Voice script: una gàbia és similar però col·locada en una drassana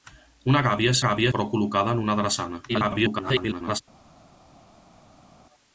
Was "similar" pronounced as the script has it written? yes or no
no